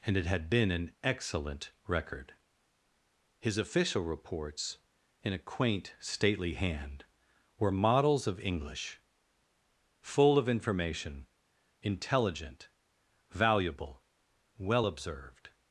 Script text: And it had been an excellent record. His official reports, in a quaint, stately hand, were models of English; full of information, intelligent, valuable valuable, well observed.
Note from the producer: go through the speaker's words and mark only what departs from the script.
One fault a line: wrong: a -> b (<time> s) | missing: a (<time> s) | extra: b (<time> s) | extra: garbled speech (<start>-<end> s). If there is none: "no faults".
missing: valuable (14.0 s)